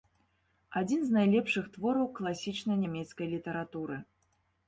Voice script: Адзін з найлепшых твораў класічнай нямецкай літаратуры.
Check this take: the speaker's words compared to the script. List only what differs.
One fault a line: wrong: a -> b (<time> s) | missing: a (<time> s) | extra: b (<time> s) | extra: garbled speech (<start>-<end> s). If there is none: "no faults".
no faults